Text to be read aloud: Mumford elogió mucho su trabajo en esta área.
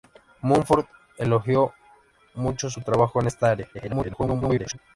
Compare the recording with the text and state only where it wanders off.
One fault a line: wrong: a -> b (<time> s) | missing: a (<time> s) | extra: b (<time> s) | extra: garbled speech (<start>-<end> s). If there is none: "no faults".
extra: garbled speech (3.7-4.8 s)